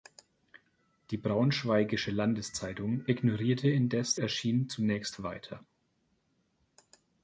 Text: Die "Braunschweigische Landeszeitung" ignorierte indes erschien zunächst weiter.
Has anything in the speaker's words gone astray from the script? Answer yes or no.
no